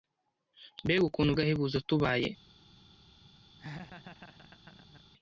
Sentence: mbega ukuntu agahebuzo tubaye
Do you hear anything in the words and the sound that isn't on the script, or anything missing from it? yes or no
yes